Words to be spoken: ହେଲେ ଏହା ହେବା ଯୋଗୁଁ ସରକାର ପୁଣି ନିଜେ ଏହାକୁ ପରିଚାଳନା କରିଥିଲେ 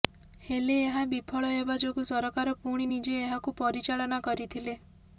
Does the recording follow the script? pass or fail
fail